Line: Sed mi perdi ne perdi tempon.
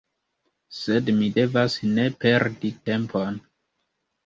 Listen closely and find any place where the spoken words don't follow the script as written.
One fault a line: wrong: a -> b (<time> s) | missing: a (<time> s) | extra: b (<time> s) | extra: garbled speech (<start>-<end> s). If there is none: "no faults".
wrong: perdi -> devas (1.4 s)